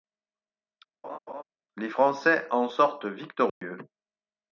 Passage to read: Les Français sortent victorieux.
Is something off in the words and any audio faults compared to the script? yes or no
yes